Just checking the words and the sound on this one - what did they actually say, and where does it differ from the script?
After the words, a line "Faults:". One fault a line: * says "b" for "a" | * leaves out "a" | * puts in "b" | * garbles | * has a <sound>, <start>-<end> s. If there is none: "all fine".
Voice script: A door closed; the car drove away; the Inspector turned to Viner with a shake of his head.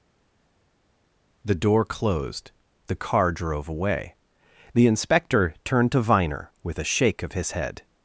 The door closed; the car drove away; the Inspector turned to Viner with a shake of his head.
Faults:
* says "The" for "A"